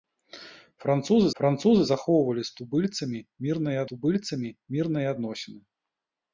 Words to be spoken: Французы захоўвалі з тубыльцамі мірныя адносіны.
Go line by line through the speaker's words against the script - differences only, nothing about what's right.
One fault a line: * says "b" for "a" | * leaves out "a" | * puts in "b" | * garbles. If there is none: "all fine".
* puts in "французы"
* puts in "тубыльцамі мірныя"